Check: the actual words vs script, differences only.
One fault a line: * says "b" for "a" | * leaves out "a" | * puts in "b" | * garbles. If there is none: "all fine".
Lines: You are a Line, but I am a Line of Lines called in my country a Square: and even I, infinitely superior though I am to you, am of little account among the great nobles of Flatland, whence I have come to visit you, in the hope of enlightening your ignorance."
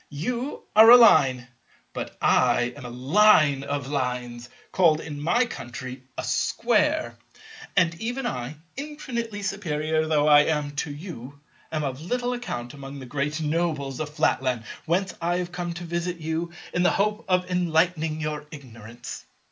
all fine